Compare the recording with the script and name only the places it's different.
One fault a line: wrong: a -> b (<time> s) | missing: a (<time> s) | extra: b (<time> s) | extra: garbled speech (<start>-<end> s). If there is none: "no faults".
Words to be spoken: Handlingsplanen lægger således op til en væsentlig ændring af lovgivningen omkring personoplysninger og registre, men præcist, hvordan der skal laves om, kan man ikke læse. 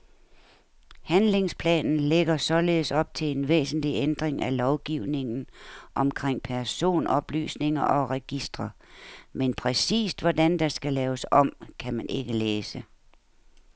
no faults